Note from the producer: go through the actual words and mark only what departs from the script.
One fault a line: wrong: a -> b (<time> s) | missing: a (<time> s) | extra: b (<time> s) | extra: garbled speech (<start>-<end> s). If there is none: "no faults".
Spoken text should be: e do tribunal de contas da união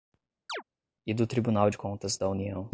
no faults